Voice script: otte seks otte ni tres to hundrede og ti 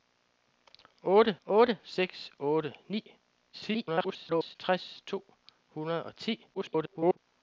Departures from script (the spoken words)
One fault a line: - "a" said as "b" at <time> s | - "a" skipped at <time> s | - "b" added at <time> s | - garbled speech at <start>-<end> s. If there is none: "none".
- "otte" added at 1.5 s
- garbled speech at 3.5-4.6 s
- garbled speech at 6.5-7.2 s